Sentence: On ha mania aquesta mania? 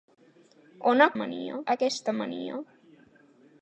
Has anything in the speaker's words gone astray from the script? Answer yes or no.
no